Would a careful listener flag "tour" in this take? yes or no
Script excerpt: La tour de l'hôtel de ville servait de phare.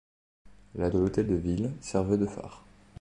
yes